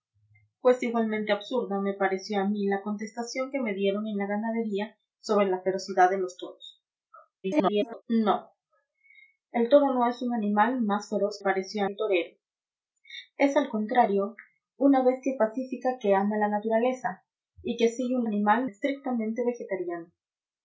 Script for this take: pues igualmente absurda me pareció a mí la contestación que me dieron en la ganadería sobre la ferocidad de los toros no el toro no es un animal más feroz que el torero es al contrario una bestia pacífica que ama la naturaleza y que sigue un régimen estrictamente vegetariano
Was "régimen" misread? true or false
true